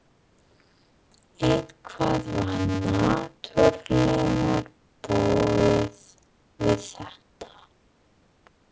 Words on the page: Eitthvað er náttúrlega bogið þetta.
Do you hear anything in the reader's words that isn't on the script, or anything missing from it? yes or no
yes